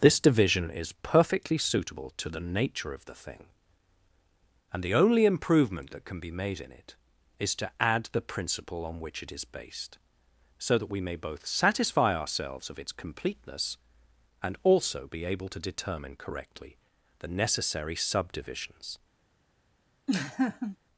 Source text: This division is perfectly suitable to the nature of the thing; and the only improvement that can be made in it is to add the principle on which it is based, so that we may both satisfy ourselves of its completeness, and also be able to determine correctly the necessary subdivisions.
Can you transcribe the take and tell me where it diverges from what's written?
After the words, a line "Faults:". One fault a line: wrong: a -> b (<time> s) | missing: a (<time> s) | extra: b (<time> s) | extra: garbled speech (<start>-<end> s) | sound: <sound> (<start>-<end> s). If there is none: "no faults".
This division is perfectly suitable to the nature of the thing; and the only improvement that can be made in it is to add the principle on which it is based, so that we may both satisfy ourselves of its completeness, and also be able to determine correctly the necessary subdivisions.
Faults:
sound: laugh (20.1-20.8 s)